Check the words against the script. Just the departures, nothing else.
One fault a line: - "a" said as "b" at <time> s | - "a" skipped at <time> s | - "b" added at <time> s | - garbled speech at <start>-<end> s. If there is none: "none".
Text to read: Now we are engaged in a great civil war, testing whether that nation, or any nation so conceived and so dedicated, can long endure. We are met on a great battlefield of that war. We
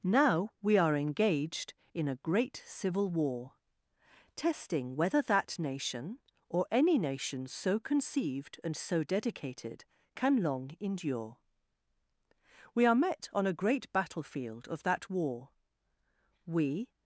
none